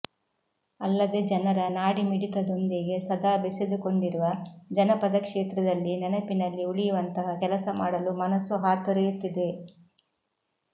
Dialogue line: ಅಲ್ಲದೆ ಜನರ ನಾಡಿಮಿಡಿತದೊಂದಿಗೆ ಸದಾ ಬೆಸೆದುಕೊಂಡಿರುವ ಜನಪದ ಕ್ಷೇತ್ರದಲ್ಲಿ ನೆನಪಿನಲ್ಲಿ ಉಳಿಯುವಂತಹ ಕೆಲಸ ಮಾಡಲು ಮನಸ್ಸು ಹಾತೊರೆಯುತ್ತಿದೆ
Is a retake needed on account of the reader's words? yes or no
no